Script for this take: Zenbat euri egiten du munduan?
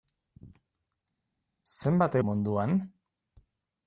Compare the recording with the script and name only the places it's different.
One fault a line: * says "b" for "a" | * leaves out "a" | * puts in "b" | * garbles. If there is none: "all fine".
* leaves out "euri egiten"